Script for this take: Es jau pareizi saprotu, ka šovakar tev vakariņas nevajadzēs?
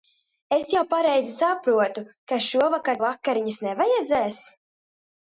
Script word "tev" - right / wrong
wrong